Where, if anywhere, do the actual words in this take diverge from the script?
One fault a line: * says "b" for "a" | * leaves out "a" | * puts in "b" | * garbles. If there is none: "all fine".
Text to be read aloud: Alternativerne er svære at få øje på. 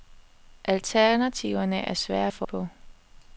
* leaves out "øje"